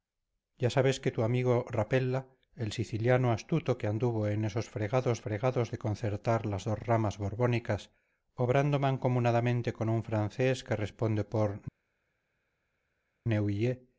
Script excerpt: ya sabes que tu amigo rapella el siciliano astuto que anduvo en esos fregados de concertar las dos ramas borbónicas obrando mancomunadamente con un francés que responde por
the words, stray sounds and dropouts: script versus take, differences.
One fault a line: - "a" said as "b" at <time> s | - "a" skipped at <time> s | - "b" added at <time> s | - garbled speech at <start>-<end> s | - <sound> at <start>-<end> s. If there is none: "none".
- "fregados" added at 5.2 s